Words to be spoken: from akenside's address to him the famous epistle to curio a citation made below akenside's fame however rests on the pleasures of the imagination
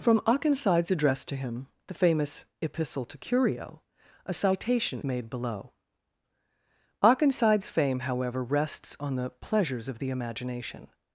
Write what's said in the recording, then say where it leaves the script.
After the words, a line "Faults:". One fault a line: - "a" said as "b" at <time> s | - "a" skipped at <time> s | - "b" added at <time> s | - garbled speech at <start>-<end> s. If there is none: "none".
from akenside's address to him the famous epistle to curio a citation made below akenside's fame however rests on the pleasures of the imagination
Faults:
none